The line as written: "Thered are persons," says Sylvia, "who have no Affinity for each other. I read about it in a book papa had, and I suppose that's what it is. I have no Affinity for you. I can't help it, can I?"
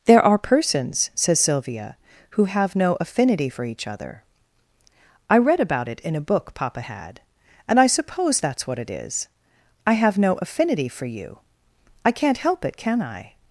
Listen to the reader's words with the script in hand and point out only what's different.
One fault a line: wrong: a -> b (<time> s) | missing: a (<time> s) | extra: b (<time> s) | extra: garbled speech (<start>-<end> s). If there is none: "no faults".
wrong: Thered -> There (0.1 s)